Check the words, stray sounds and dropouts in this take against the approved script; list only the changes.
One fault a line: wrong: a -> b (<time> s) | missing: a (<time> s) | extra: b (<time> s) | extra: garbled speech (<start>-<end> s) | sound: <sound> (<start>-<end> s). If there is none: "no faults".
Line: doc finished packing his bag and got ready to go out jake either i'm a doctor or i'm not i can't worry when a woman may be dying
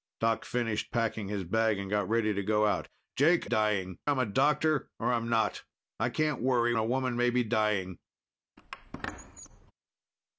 wrong: either -> dying (3.4 s)
missing: when (6.7 s)
sound: squeak (8.6-9.7 s)